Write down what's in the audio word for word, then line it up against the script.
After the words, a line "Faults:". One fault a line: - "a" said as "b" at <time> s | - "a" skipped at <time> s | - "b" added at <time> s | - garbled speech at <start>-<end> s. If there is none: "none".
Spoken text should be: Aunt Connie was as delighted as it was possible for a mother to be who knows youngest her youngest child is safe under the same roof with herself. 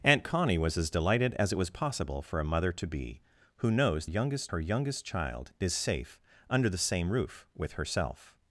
Aunt Connie was as delighted as it was possible for a mother to be who knows youngest her youngest child is safe under the same roof with herself.
Faults:
none